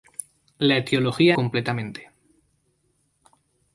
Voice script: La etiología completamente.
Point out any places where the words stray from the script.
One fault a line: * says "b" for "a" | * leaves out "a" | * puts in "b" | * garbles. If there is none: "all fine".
all fine